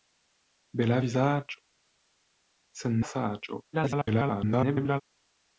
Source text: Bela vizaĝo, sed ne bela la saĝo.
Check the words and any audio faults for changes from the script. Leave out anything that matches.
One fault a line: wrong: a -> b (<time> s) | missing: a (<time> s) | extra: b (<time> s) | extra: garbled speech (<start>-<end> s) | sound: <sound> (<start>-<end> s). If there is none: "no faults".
missing: ne bela (3.0 s)
extra: garbled speech (3.7-5.0 s)